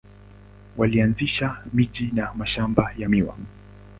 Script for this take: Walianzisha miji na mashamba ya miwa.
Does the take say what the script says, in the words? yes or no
yes